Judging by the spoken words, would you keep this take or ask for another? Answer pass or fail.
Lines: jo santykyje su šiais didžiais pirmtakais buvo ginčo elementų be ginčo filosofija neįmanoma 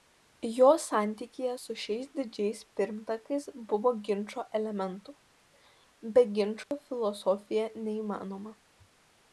pass